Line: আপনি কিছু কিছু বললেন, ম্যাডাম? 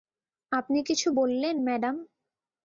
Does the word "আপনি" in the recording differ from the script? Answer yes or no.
no